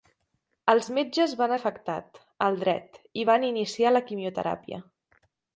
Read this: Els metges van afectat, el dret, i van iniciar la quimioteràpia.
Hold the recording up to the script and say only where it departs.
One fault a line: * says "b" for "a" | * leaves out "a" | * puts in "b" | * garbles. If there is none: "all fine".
all fine